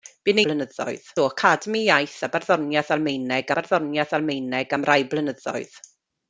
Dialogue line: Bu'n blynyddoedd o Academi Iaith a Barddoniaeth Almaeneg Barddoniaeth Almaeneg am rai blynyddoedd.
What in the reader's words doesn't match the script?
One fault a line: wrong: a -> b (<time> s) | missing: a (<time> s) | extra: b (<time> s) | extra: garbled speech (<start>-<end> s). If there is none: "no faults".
no faults